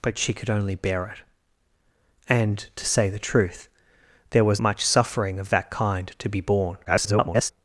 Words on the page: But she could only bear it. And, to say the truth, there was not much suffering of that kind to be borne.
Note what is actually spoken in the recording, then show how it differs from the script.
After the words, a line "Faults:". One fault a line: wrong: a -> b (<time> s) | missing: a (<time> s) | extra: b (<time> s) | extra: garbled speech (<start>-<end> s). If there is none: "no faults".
But she could only bear it. And, to say the truth, there was much suffering of that kind to be borne. [garbled]
Faults:
missing: not (4.6 s)
extra: garbled speech (6.8-7.5 s)